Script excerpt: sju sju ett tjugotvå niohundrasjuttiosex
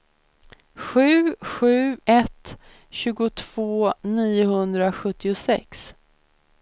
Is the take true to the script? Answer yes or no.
yes